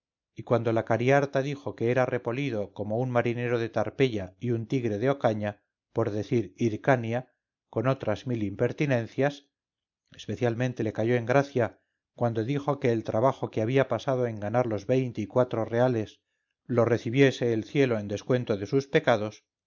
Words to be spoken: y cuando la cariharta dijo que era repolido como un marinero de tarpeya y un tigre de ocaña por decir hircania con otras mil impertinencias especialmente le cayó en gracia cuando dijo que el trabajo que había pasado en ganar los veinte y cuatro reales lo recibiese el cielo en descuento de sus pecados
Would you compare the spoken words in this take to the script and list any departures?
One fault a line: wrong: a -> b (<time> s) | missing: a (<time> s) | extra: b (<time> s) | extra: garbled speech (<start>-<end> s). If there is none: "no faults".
no faults